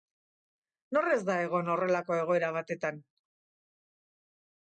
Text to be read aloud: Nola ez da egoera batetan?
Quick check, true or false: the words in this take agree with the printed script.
false